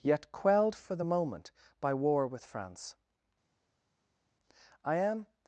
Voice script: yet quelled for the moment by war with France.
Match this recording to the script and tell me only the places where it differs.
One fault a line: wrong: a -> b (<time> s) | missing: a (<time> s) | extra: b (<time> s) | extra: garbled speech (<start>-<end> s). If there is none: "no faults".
extra: I am (4.8 s)